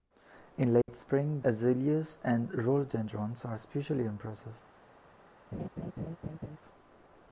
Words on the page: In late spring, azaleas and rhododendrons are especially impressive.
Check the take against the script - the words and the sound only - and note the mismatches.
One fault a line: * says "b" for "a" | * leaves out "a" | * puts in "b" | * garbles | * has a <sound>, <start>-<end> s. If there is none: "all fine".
* has a dropout, 0.8-0.9 s
* has a laugh, 5.5-6.6 s